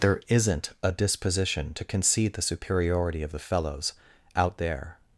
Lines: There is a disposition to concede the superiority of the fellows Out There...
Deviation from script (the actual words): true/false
true